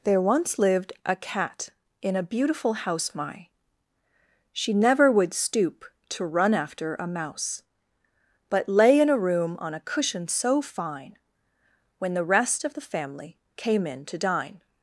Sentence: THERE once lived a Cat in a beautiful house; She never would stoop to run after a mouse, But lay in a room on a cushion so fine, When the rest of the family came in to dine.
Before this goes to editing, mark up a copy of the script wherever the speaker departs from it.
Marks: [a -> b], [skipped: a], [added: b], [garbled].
THERE once lived a Cat in a beautiful house; [added: my] She never would stoop to run after a mouse, But lay in a room on a cushion so fine, When the rest of the family came in to dine.